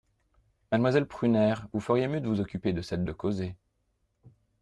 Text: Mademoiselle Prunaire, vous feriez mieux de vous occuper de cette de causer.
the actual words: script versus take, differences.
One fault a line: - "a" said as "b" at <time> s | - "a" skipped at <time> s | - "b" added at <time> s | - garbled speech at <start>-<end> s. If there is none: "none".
none